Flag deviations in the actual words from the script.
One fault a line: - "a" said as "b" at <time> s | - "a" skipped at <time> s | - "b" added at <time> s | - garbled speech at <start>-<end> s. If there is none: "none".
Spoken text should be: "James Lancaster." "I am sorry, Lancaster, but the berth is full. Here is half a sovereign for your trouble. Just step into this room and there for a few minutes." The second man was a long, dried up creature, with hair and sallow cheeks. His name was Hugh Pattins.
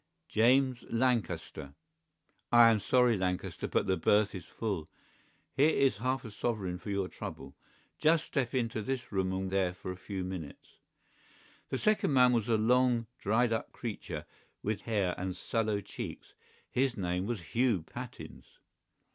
none